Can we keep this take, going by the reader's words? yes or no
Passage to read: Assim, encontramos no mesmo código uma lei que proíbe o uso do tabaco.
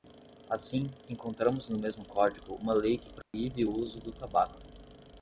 yes